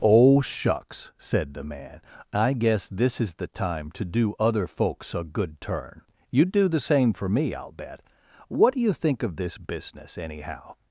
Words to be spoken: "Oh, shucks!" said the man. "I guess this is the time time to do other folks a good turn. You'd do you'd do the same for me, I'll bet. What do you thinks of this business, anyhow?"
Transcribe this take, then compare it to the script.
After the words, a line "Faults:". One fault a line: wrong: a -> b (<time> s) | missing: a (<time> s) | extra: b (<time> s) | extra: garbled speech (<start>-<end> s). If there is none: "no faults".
"Oh, shucks!" said the man. "I guess this is the time to do other folks a good turn. You'd do the same for me, I'll bet. What do you think of this business, anyhow?"
Faults:
missing: time (3.9 s)
missing: you'd do (6.7 s)
wrong: thinks -> think (8.9 s)